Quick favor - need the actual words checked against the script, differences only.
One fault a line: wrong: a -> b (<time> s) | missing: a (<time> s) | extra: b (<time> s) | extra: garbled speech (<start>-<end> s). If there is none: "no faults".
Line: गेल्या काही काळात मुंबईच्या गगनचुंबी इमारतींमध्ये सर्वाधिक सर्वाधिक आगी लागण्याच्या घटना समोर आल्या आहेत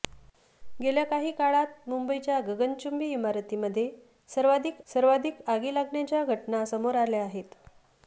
no faults